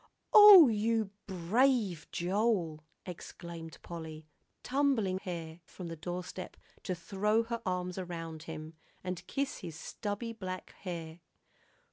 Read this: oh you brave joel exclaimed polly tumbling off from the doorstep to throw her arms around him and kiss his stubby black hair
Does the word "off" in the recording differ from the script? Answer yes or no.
yes